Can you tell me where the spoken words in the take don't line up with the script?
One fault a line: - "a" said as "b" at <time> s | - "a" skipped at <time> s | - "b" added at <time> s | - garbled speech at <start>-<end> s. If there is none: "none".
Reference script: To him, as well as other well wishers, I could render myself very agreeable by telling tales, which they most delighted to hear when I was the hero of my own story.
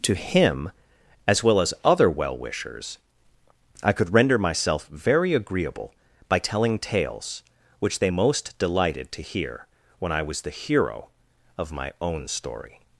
none